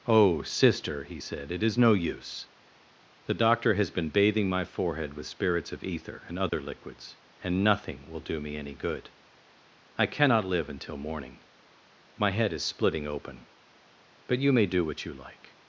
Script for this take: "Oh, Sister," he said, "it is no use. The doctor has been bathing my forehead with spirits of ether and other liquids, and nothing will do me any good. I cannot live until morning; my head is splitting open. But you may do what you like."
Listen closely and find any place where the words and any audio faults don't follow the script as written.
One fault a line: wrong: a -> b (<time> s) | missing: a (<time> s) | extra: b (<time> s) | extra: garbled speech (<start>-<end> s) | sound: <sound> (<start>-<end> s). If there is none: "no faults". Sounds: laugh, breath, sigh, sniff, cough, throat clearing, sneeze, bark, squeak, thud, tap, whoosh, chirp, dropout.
sound: dropout (6.5-6.5 s)